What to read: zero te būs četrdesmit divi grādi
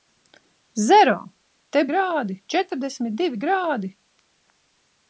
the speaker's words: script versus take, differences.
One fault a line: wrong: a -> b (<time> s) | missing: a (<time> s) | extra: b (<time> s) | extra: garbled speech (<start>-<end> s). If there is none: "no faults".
wrong: būs -> grādi (1.9 s)